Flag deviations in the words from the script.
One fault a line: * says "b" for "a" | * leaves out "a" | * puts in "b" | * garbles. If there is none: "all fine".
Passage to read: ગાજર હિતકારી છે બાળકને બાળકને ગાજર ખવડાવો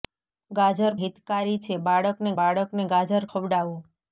all fine